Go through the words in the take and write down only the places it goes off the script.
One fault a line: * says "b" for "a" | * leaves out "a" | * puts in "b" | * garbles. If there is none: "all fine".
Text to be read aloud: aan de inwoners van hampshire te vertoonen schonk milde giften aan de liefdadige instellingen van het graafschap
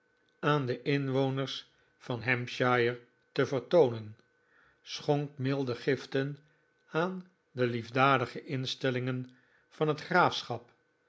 all fine